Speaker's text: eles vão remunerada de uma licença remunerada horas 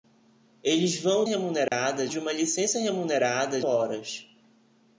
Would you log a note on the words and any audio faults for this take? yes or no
yes